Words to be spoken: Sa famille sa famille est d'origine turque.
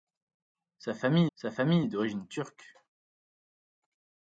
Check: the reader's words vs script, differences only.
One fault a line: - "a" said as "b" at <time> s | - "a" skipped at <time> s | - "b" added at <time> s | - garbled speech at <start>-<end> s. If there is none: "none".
none